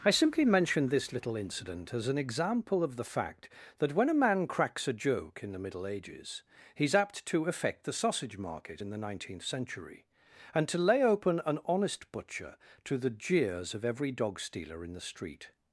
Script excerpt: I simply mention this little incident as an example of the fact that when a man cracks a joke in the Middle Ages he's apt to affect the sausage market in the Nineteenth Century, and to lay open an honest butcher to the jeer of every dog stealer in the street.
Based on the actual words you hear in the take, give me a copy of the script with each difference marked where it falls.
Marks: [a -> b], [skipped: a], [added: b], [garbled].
I simply mention this little incident as an example of the fact that when a man cracks a joke in the Middle Ages he's apt to affect the sausage market in the Nineteenth Century, and to lay open an honest butcher to the [jeer -> jeers] of every dog stealer in the street.